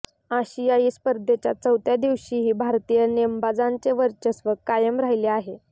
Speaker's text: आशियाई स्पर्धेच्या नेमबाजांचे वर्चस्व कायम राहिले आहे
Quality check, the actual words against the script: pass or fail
fail